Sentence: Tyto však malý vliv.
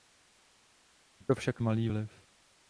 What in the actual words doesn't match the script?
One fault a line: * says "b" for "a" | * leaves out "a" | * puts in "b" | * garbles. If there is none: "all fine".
all fine